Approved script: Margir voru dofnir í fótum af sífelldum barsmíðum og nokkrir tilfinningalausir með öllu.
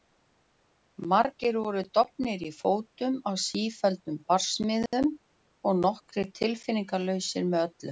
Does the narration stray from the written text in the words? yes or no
no